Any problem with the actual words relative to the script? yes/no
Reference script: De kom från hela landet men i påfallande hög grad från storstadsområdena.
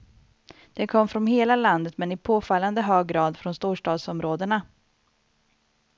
no